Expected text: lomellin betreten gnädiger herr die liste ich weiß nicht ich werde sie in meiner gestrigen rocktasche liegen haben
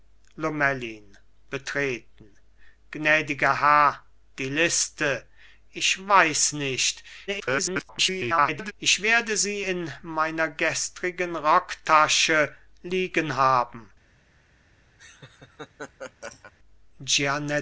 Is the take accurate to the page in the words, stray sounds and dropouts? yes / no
no